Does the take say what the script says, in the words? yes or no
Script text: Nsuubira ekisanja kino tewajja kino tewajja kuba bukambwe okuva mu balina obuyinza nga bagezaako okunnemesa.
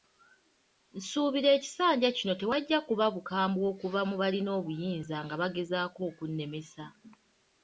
no